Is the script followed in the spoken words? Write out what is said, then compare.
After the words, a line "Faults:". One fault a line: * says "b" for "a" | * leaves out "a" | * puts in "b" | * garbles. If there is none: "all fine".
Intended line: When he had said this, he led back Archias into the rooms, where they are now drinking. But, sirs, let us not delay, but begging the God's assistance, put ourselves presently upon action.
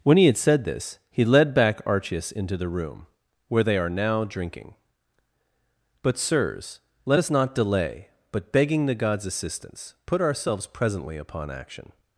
When he had said this, he led back Archias into the room, where they are now drinking. But, sirs, let us not delay, but begging the God's assistance, put ourselves presently upon action.
Faults:
* says "room" for "rooms"